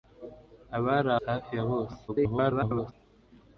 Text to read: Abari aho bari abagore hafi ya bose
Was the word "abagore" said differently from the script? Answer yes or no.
yes